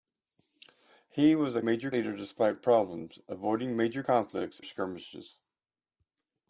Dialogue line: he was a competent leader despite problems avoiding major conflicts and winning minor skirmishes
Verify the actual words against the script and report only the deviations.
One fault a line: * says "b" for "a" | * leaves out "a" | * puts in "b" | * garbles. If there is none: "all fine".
* says "major" for "competent"
* leaves out "and winning minor"